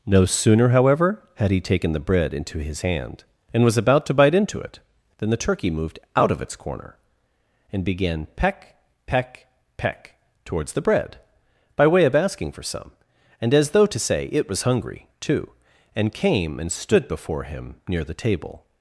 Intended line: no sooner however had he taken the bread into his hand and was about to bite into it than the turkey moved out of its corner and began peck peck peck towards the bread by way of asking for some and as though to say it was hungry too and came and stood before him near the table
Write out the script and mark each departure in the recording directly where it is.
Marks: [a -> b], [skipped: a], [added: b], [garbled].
no sooner however had he taken the bread into his hand and was about to bite into it than the turkey moved out of its corner and began peck peck peck towards the bread by way of asking for some and as though to say it was hungry too and came and stood before him near the table